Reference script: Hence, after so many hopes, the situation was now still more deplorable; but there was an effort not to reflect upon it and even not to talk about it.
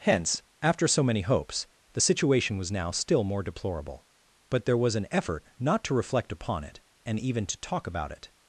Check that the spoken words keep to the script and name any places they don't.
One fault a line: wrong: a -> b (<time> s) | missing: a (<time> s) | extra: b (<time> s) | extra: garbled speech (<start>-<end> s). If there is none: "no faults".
missing: not (7.5 s)